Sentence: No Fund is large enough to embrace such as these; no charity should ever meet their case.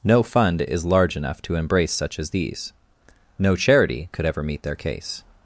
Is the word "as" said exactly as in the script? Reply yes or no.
yes